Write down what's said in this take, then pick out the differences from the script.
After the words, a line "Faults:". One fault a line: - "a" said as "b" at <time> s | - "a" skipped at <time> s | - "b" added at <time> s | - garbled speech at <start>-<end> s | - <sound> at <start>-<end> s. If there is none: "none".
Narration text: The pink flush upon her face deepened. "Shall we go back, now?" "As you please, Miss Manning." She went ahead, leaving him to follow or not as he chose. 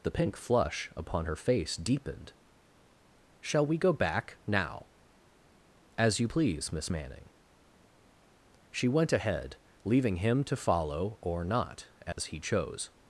The pink flush upon her face deepened. "Shall we go back, now?" "As you please, Miss Manning." She went ahead, leaving him to follow or not as he chose.
Faults:
- dropout at 12.1-12.2 s